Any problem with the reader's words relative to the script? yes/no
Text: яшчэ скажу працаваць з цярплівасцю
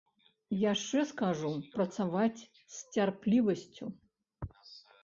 no